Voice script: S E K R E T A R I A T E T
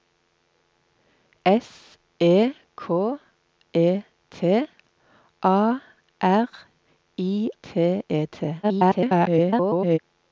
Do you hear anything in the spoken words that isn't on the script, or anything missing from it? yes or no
yes